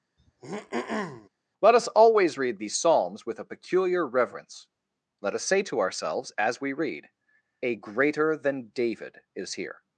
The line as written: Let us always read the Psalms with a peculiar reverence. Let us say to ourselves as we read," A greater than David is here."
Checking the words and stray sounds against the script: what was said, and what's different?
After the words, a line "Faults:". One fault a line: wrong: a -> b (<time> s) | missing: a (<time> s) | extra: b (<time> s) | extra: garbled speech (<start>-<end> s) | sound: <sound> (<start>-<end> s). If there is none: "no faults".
Let us always read these Psalms with a peculiar reverence. Let us say to ourselves as we read," A greater than David is here."
Faults:
sound: throat clearing (0.2-1.3 s)
wrong: the -> these (2.6 s)